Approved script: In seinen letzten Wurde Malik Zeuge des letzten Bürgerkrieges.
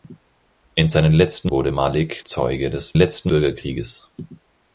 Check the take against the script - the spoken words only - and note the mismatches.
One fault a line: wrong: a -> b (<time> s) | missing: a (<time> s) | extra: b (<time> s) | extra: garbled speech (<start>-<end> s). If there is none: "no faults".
no faults